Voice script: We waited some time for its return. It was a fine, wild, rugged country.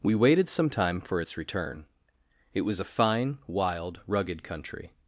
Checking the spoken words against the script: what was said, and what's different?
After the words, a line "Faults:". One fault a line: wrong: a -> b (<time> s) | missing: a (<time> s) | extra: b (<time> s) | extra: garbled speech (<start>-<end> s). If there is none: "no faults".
We waited some time for its return. It was a fine, wild, rugged country.
Faults:
no faults